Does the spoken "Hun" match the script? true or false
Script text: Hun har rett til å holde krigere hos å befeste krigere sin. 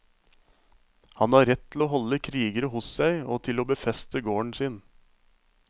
false